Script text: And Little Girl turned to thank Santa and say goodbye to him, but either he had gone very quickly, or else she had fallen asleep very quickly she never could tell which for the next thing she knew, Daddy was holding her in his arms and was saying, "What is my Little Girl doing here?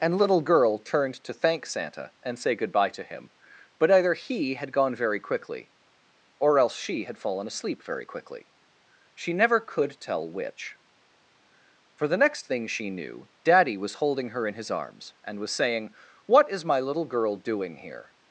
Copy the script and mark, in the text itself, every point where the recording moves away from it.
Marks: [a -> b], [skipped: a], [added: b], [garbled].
And Little Girl turned to thank Santa and say goodbye to him, but either he had gone very quickly, or else she had fallen asleep very quickly she never could tell which for the next thing she knew, Daddy was holding her in his arms and was saying, "What is my Little Girl doing here?